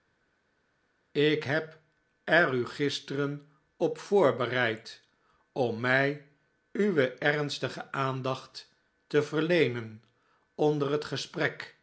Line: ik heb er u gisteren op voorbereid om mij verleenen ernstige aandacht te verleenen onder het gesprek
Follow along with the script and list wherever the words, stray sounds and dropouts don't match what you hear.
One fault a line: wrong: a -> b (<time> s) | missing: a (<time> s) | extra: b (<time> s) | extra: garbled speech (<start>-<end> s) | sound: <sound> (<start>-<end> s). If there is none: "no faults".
wrong: verleenen -> uwe (6.7 s)